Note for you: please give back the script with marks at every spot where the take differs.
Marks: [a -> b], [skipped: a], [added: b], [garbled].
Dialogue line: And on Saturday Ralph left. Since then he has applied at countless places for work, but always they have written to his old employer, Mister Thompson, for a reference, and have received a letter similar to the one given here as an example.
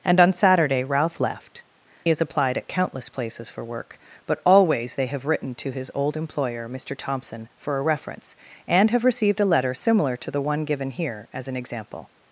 And on Saturday Ralph left. [skipped: Since then he] has applied at countless places for work, but always they have written to his old employer, Mister Thompson, for a reference, and have received a letter similar to the one given here as an example.